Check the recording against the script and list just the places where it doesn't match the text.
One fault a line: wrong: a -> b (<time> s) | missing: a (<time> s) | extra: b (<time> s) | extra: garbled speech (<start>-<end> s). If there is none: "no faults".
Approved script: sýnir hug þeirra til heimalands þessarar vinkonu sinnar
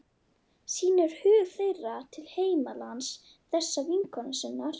no faults